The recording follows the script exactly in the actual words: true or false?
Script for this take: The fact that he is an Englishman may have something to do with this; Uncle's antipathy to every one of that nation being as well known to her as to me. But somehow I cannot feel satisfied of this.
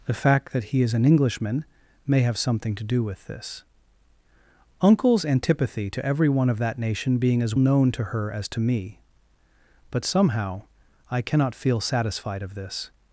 false